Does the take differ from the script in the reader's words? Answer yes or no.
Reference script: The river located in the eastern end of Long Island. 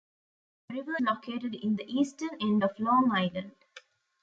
no